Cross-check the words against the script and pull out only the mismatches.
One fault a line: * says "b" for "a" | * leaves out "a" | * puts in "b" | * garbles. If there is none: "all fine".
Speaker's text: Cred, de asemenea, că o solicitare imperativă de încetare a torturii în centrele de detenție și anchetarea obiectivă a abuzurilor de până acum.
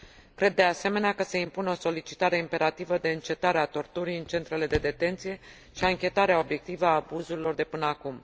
* puts in "se impune"